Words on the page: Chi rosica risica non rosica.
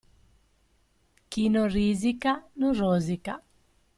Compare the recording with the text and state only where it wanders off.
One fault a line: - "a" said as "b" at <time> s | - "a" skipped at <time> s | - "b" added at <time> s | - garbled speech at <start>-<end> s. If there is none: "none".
- "rosica" said as "non" at 1.5 s